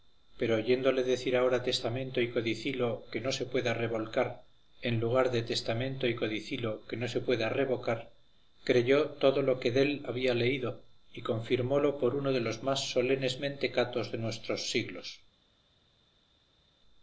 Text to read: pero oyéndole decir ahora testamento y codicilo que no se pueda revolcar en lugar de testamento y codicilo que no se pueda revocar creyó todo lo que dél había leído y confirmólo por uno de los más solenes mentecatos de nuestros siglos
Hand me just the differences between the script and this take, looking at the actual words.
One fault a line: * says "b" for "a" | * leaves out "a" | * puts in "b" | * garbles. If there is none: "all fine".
all fine